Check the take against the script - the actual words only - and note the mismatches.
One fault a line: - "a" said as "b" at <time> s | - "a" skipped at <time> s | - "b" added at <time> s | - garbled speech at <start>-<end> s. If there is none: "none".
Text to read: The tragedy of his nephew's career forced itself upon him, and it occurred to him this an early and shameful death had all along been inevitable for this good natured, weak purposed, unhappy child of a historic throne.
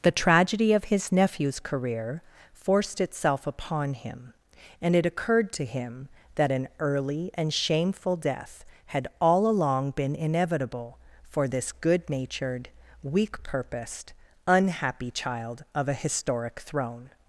- "this" said as "that" at 6.3 s